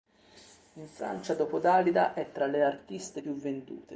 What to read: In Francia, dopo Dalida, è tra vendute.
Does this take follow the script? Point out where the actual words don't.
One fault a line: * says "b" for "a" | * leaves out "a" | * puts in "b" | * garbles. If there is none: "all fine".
* puts in "le artiste più"